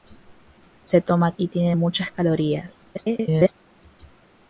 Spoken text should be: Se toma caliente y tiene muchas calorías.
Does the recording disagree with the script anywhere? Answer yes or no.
yes